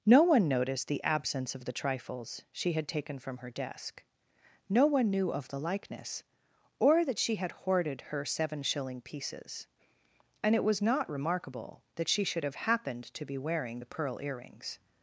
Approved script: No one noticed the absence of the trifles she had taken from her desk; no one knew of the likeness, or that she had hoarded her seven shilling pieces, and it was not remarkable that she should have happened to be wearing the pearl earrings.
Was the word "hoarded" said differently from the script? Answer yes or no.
no